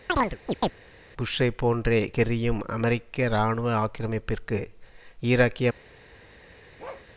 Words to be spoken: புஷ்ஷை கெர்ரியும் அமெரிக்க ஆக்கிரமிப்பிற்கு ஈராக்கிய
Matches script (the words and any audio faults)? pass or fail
fail